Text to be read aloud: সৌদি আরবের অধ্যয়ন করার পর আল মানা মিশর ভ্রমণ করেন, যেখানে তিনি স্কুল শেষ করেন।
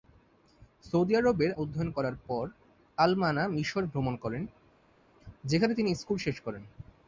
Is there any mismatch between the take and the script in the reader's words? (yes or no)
no